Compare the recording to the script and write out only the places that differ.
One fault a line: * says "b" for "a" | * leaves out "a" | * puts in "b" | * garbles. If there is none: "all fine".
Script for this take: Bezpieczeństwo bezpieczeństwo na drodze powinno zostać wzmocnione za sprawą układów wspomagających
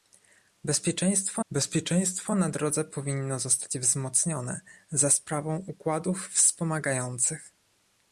all fine